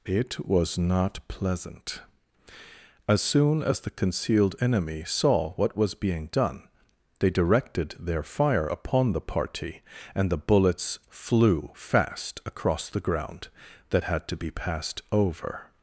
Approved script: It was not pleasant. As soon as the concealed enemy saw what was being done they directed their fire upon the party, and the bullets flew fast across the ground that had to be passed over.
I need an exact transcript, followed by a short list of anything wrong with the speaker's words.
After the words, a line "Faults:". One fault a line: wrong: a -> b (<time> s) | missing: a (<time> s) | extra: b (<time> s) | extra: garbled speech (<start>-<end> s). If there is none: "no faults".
It was not pleasant. As soon as the concealed enemy saw what was being done they directed their fire upon the party, and the bullets flew fast across the ground that had to be passed over.
Faults:
no faults